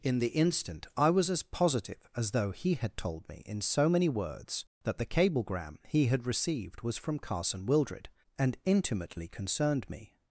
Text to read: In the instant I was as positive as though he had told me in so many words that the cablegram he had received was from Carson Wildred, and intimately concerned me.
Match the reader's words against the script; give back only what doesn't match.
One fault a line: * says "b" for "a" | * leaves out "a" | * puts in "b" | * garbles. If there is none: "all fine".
all fine